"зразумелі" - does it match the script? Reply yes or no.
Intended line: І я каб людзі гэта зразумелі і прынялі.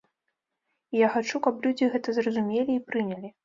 yes